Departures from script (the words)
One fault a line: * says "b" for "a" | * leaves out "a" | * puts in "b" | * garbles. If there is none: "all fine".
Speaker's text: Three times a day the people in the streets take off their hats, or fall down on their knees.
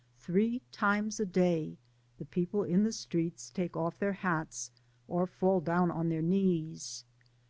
all fine